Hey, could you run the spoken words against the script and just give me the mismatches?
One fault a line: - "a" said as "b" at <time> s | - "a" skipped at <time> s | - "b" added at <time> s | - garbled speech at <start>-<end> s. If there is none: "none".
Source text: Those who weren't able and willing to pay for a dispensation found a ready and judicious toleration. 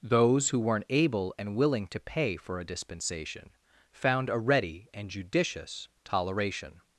none